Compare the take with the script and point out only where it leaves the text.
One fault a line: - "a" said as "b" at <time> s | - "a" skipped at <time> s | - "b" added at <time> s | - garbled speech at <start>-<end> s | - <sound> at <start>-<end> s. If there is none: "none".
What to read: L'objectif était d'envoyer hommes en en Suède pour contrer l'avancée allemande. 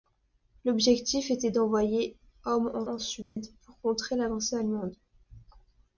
- dropout at 3.2-3.4 s